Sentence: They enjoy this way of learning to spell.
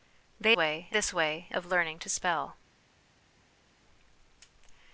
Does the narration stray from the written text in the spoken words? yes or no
yes